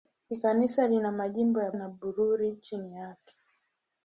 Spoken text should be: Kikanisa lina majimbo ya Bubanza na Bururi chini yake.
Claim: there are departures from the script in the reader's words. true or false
true